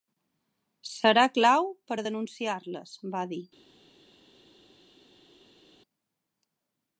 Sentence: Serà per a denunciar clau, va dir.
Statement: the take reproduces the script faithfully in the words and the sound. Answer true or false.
false